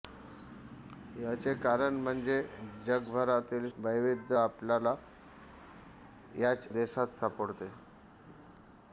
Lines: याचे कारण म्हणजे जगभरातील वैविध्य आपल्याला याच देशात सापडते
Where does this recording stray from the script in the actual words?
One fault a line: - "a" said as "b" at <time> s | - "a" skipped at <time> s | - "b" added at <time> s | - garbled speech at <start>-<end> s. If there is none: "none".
none